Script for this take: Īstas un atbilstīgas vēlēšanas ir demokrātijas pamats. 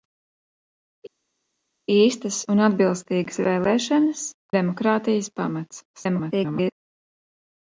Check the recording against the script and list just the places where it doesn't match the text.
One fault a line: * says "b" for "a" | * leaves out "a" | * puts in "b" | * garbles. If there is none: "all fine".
* leaves out "ir"
* garbles